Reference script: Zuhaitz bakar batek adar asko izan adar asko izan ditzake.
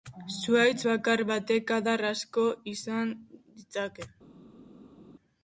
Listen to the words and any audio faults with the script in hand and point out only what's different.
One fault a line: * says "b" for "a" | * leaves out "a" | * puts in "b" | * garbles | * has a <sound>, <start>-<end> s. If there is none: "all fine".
* leaves out "adar asko izan"